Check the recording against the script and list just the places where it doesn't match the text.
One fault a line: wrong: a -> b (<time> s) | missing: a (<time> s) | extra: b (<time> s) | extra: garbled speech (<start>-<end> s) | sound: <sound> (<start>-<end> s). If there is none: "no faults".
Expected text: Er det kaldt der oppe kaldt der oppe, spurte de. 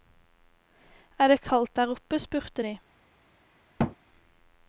missing: kaldt der oppe (2.2 s)
sound: thud (3.8-4.0 s)